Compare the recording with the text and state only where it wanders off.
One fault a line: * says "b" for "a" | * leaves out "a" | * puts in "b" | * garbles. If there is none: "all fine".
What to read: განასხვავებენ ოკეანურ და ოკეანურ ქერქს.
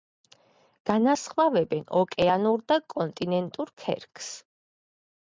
* says "კონტინენტურ" for "ოკეანურ"